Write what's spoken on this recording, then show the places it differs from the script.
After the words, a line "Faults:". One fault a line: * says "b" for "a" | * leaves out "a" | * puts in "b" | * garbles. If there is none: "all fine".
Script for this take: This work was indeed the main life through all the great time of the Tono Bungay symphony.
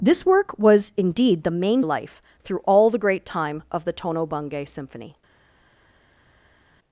This work was indeed the main life through all the great time of the Tono Bungay symphony.
Faults:
all fine